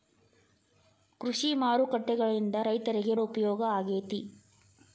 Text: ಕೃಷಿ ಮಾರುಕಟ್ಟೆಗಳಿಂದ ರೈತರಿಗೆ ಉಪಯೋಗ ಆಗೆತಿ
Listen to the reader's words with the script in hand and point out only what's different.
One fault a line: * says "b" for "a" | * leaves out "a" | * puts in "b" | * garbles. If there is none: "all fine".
all fine